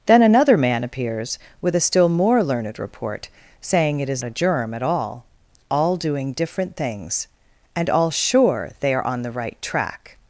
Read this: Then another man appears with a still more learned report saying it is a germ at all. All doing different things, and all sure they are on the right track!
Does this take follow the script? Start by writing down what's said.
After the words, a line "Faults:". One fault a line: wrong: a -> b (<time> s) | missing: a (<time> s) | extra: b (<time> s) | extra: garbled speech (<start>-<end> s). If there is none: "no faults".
Then another man appears with a still more learned report saying it is a germ at all. All doing different things, and all sure they are on the right track!
Faults:
no faults